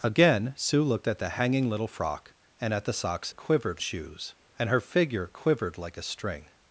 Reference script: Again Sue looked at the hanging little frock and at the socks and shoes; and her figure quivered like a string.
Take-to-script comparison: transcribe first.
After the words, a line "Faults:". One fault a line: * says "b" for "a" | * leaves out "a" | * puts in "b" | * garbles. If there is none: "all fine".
Again Sue looked at the hanging little frock and at the socks quivered shoes; and her figure quivered like a string.
Faults:
* says "quivered" for "and"